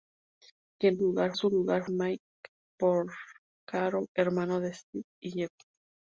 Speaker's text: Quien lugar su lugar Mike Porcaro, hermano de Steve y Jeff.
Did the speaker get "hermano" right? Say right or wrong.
right